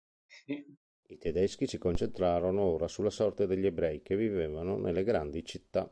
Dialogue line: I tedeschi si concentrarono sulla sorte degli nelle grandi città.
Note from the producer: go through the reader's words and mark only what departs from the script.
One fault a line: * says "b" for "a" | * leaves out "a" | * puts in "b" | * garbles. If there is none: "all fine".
* puts in "ora"
* puts in "ebrei che vivevano"